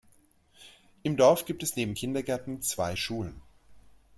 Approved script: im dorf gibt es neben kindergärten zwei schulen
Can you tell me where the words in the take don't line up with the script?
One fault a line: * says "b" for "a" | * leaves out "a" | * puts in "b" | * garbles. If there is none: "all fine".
all fine